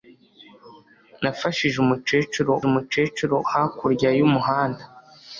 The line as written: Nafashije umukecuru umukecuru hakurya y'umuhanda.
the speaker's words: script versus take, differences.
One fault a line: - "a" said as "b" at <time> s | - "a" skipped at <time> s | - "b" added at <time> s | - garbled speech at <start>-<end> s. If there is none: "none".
none